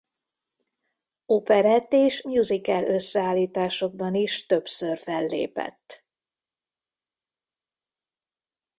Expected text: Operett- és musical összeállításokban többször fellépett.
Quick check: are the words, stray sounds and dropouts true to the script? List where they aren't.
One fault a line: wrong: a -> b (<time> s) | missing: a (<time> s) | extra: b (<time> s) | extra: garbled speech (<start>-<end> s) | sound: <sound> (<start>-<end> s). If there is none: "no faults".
extra: is (4.1 s)